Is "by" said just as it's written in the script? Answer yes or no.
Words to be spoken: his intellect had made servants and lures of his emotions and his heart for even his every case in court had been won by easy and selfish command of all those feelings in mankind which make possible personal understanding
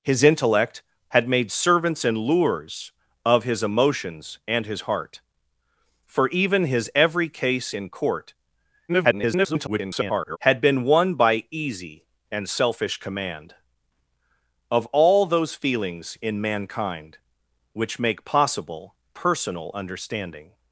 yes